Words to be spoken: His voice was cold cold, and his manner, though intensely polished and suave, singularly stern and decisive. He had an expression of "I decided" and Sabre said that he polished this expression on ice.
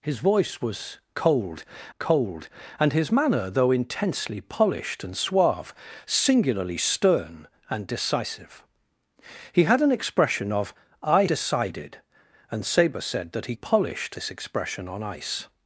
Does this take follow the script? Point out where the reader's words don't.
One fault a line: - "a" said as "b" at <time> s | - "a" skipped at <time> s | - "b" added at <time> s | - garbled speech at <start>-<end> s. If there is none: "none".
none